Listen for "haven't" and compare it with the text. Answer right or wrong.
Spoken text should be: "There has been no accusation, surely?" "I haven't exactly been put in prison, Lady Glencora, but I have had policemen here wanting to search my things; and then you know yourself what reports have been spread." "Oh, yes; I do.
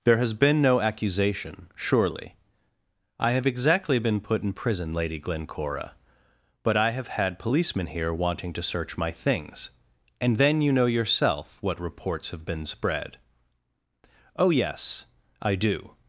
wrong